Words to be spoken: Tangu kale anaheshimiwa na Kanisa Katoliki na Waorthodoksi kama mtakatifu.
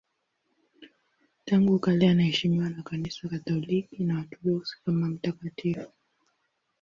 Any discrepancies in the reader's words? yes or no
no